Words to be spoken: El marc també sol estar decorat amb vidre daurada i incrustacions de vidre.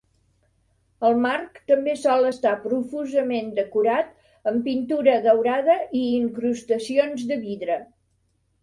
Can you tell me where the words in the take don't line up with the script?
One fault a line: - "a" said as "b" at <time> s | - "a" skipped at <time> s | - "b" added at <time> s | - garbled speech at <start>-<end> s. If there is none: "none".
- "profusament" added at 2.7 s
- "vidre" said as "pintura" at 4.7 s